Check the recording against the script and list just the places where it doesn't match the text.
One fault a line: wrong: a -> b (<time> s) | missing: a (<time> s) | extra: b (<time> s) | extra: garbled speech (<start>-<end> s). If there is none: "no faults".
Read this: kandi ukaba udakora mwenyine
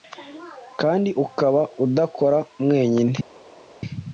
no faults